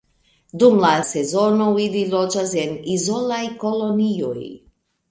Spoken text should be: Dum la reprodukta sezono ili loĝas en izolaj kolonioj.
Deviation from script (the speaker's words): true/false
true